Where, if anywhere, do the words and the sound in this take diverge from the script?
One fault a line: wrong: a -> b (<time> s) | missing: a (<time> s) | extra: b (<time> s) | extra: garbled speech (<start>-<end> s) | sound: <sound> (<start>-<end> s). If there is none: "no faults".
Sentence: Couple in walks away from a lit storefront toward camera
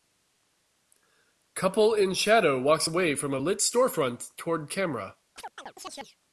extra: shadow (2.1 s)
sound: chirp (5.4-6.2 s)